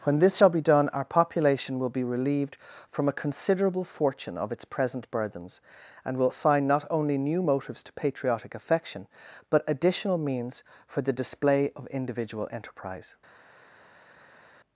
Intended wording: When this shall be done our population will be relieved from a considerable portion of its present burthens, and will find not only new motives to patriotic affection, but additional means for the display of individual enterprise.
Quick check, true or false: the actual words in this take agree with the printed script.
false